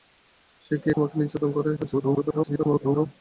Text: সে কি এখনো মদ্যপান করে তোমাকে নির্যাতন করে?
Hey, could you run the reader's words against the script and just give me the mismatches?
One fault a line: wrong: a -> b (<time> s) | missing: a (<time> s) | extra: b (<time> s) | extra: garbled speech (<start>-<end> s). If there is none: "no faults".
missing: এখনো মদ্যপান করে (0.9 s)
extra: garbled speech (1.8-3.1 s)